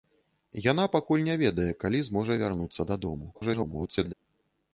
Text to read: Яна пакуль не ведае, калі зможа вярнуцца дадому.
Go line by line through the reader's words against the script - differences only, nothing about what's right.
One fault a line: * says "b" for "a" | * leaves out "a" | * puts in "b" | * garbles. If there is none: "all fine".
* garbles